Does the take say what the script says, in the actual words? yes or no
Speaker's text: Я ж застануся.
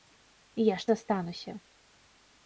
yes